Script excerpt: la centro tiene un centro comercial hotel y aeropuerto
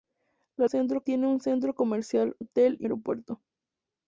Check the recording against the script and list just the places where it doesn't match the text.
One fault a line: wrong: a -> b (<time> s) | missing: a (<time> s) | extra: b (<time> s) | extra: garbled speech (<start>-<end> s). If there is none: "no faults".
no faults